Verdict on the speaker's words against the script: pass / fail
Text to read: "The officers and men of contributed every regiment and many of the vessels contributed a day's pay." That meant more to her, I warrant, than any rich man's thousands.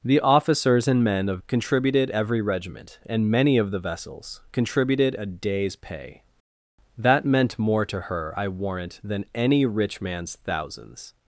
pass